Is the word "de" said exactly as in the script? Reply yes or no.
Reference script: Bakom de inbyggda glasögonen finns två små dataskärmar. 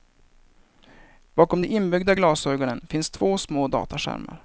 yes